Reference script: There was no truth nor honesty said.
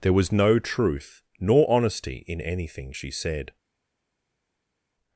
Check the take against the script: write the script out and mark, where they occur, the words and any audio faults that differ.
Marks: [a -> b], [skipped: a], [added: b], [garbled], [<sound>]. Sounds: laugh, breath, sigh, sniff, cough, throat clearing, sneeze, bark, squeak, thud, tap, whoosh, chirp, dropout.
There was no truth nor honesty [added: in anything she] said.